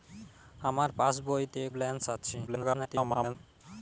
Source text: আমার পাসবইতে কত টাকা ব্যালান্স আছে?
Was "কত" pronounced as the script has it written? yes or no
no